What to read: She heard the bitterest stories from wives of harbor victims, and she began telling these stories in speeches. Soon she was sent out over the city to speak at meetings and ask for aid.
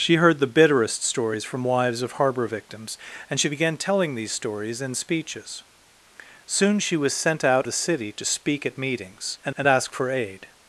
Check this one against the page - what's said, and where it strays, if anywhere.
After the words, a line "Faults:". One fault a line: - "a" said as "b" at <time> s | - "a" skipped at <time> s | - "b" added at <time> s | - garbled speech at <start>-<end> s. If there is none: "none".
She heard the bitterest stories from wives of harbor victims, and she began telling these stories in speeches. Soon she was sent out the city to speak at meetings and and ask for aid.
Faults:
- "over" skipped at 7.7 s
- "and" added at 9.6 s